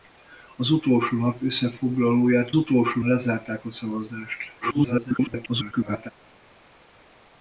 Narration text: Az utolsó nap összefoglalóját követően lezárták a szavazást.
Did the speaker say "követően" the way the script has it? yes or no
no